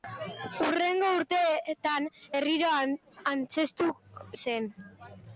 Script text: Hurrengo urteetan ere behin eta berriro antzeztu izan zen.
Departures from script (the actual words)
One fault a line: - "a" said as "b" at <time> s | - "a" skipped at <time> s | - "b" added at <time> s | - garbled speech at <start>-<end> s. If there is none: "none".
- "ere behin eta" skipped at 2.1 s
- "izan" skipped at 3.9 s